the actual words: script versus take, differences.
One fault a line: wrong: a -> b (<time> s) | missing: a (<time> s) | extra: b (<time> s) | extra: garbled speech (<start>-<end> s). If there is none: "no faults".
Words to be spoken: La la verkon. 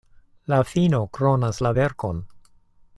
extra: fino kronas (0.7 s)